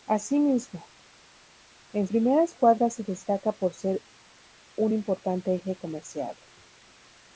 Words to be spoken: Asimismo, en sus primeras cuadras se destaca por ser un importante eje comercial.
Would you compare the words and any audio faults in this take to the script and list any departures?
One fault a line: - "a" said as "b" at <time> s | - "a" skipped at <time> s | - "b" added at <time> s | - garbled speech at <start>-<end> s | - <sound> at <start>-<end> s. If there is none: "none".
- "sus" skipped at 2.1 s